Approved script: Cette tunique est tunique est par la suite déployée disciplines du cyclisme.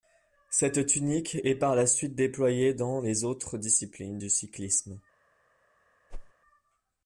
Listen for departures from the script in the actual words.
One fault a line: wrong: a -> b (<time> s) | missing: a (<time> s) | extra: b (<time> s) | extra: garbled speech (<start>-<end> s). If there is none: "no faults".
missing: tunique est (1.5 s)
extra: dans les autres (2.7 s)